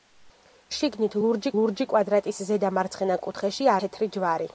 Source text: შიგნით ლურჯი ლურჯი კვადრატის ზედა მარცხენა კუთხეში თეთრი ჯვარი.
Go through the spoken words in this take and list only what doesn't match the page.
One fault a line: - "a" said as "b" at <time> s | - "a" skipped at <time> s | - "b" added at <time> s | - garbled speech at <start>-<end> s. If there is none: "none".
none